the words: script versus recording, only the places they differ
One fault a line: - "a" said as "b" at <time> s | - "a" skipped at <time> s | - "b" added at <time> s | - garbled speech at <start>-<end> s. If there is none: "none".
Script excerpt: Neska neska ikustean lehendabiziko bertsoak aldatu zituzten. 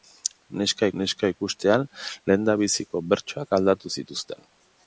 none